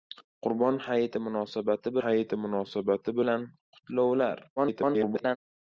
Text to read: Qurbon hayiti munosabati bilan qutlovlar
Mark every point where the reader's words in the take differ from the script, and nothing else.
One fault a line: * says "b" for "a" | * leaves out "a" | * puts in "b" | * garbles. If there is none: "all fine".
* puts in "hayiti munosabati"
* garbles